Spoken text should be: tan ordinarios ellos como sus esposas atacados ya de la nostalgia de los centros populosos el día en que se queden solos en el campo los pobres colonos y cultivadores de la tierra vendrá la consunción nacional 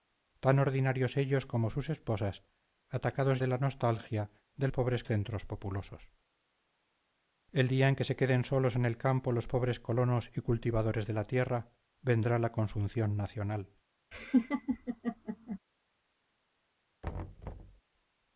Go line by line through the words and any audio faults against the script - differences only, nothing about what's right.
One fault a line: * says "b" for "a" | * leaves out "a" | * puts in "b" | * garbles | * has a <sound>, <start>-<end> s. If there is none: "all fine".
* leaves out "ya"
* says "pobres" for "los"
* has a laugh, 14.1-15.6 s
* has a thud, 17.0-17.8 s